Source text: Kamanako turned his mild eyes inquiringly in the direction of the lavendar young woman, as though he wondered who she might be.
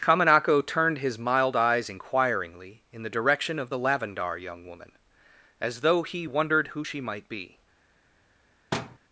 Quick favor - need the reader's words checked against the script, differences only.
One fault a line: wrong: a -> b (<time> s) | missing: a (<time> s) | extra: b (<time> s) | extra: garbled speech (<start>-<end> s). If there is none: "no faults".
no faults